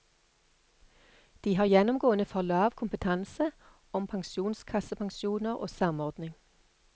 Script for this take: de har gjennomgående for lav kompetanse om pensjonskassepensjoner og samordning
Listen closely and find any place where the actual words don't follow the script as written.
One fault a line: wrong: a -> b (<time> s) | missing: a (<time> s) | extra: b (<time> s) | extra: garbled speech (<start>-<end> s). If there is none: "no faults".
no faults